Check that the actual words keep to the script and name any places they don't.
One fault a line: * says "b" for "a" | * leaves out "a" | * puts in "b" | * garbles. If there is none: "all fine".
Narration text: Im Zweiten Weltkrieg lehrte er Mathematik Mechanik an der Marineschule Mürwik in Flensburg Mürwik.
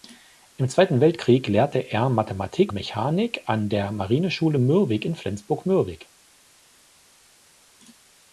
all fine